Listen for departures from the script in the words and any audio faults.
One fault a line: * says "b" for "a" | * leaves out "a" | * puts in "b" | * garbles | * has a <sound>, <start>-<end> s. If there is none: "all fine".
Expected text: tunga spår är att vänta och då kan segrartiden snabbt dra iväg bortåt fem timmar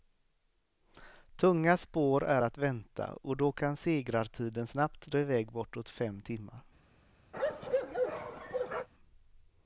* has a bark, 7.3-8.9 s